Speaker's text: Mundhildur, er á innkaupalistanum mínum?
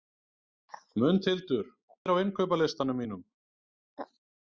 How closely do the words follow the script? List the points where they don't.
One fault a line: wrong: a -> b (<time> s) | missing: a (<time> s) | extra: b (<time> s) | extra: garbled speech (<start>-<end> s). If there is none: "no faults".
no faults